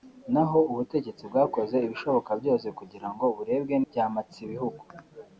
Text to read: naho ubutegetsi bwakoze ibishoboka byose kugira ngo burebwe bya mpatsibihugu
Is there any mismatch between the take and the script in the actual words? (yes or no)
no